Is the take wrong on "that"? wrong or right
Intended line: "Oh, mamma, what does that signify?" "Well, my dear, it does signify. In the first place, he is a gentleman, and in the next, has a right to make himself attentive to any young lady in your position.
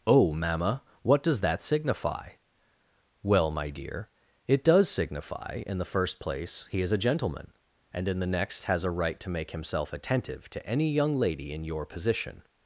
right